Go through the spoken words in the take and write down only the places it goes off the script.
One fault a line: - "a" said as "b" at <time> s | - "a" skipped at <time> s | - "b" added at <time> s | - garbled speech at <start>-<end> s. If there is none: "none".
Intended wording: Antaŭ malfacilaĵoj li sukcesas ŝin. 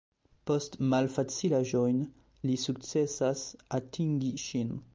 - "Antaŭ" said as "Post" at 0.5 s
- "atingi" added at 3.8 s